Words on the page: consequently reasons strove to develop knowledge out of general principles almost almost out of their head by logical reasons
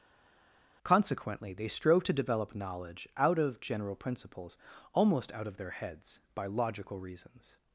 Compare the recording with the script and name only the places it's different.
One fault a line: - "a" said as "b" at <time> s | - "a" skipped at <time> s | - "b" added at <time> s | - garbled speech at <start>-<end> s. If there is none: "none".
- "reasons" said as "they" at 1.5 s
- "almost" skipped at 5.3 s
- "head" said as "heads" at 5.7 s